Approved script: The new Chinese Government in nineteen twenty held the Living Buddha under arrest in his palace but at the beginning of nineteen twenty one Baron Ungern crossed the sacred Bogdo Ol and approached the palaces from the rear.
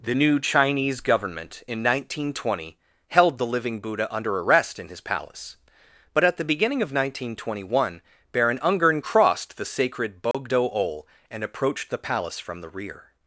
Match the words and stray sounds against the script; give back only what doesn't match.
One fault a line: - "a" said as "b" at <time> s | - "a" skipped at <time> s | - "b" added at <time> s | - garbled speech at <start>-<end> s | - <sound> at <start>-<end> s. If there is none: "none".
- dropout at 10.3-10.3 s
- "palaces" said as "palace" at 12.0 s